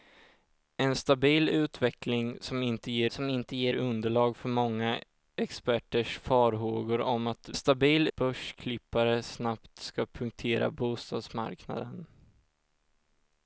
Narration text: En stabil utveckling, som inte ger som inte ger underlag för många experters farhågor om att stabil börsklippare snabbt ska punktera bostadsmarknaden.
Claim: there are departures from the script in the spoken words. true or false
false